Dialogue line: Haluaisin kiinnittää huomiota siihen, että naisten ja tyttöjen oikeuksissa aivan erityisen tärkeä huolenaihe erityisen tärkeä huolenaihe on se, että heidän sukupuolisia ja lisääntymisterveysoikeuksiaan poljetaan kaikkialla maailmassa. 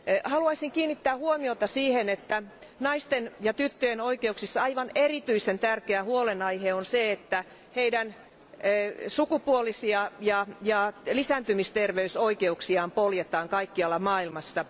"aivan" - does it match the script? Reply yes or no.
yes